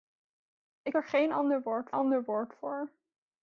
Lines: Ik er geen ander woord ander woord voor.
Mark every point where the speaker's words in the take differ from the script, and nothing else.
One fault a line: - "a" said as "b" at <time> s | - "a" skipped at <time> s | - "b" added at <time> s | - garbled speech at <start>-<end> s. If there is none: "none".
none